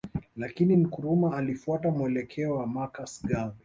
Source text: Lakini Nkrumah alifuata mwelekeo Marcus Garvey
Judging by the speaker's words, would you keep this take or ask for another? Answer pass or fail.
fail